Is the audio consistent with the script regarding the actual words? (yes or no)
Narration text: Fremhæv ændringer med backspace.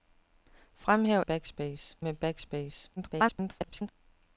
no